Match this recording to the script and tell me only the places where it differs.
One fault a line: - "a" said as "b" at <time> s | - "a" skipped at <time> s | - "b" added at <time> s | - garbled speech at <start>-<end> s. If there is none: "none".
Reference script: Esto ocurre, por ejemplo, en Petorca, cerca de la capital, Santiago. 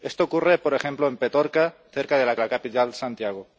- "la" added at 2.4 s